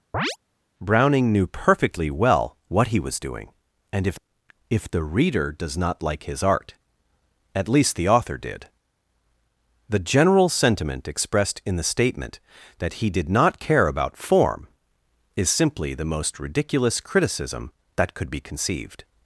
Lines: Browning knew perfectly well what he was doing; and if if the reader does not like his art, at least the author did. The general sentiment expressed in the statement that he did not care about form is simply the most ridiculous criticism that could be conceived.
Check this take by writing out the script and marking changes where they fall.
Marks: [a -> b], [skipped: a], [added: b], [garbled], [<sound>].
[chirp] Browning knew perfectly well what he was doing; and if if the reader does not like his art, at least the author did. The general sentiment expressed in the statement that he did not care about form is simply the most ridiculous criticism that could be conceived.